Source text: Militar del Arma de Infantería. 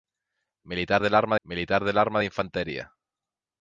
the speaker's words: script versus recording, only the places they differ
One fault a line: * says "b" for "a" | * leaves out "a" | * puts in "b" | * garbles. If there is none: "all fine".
* puts in "militar del Arma"